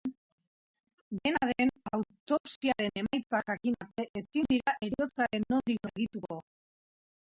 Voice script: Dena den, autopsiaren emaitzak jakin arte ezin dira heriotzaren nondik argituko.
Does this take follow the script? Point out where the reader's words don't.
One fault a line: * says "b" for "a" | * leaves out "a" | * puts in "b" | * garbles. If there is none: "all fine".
all fine